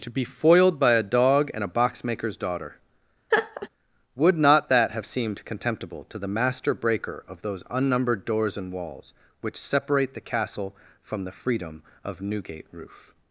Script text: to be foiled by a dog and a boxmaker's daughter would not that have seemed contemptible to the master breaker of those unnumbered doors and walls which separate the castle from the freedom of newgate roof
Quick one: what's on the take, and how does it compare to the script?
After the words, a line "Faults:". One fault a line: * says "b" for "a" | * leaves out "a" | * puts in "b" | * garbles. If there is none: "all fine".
to be foiled by a dog and a boxmaker's daughter would not that have seemed contemptible to the master breaker of those unnumbered doors and walls which separate the castle from the freedom of newgate roof
Faults:
all fine